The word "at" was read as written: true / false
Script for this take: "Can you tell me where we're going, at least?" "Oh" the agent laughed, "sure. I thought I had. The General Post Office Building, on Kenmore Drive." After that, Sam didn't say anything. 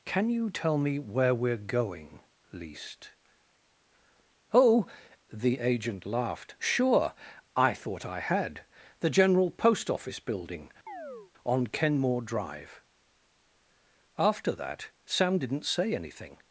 false